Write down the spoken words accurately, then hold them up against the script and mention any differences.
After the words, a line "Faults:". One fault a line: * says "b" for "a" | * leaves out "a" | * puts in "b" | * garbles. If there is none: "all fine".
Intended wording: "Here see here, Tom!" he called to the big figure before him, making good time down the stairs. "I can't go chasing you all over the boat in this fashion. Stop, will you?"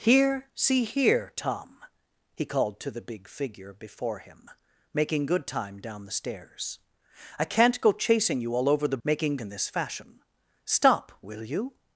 "Here see here, Tom!" he called to the big figure before him, making good time down the stairs. "I can't go chasing you all over the making in this fashion. Stop, will you?"
Faults:
* says "making" for "boat"